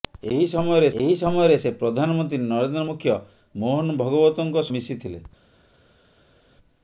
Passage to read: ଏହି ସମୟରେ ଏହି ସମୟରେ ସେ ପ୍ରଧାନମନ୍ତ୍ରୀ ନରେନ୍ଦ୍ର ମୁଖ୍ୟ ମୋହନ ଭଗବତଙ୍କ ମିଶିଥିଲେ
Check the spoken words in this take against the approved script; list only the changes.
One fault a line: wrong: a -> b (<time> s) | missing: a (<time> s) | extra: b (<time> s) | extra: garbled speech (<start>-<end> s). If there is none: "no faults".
no faults